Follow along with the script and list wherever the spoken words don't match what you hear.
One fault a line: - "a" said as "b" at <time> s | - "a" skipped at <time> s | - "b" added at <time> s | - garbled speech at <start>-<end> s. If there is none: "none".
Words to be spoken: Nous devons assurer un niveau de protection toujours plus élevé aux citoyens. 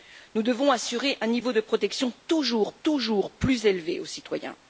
- "toujours" added at 2.8 s